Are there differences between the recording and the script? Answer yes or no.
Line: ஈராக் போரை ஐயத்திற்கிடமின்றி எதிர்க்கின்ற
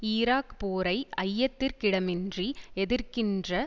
no